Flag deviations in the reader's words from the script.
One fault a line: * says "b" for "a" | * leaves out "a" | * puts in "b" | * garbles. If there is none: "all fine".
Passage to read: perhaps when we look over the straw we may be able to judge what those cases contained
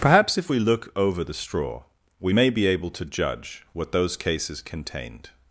* says "if" for "when"